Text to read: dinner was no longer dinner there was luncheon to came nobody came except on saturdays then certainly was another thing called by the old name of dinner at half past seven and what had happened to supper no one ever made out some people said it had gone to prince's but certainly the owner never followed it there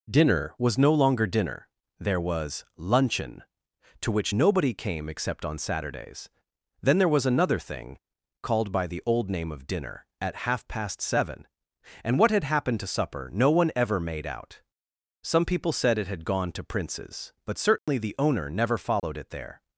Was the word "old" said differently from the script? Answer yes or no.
no